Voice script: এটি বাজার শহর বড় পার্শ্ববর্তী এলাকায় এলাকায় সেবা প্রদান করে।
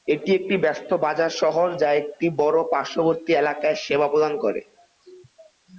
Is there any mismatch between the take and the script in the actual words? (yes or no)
yes